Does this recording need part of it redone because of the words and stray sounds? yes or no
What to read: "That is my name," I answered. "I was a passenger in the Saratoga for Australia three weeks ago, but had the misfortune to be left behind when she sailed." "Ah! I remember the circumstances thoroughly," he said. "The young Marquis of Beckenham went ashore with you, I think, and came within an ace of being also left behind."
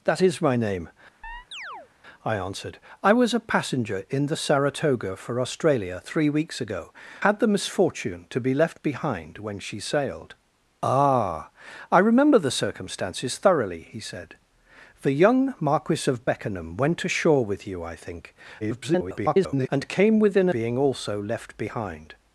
yes